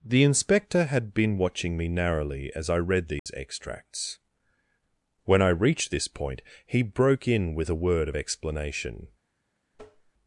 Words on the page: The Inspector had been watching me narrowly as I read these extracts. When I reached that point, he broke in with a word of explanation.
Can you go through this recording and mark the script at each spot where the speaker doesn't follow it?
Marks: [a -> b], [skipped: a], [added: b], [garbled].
The Inspector had been watching me narrowly as I read these extracts. When I reached [that -> this] point, he broke in with a word of explanation.